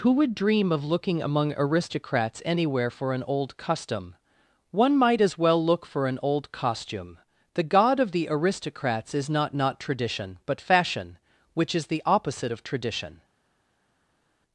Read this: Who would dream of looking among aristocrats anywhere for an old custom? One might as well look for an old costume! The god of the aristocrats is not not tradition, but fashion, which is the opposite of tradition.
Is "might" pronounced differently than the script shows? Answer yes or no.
no